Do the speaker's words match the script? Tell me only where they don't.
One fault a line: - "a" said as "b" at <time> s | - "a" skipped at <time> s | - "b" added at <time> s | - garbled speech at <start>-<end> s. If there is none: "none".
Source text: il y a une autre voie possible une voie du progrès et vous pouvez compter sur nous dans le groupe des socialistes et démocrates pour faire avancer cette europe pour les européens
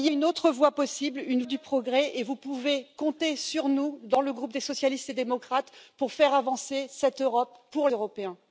- "a" skipped at 0.1 s
- "voie" skipped at 1.4 s
- "les" skipped at 7.9 s